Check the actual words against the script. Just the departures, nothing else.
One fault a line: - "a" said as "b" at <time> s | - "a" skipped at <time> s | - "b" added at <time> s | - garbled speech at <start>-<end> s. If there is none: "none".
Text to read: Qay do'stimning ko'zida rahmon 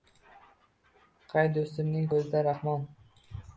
none